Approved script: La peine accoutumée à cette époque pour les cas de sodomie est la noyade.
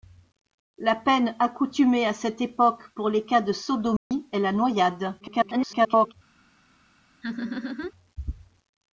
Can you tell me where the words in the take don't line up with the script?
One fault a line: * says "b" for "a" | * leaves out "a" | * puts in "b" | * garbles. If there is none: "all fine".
* garbles